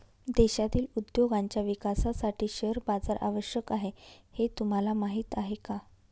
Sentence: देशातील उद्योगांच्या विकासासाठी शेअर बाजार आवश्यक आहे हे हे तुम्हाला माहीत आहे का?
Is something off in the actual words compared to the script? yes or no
yes